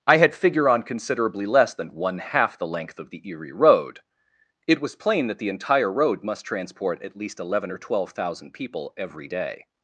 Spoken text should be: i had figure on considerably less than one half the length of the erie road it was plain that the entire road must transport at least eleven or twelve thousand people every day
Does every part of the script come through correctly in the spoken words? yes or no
yes